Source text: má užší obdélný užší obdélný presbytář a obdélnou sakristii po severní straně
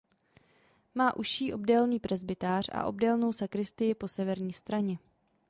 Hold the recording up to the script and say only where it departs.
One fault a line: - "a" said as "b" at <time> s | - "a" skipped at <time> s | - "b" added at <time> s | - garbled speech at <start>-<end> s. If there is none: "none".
- "užší obdélný" skipped at 2.0 s